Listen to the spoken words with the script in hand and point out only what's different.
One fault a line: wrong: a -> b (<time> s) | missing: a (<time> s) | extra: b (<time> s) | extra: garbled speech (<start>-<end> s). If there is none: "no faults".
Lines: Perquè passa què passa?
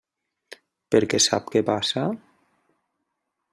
wrong: passa -> sap (1.3 s)